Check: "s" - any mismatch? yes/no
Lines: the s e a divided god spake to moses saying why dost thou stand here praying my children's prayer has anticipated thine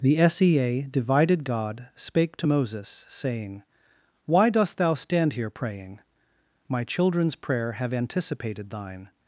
no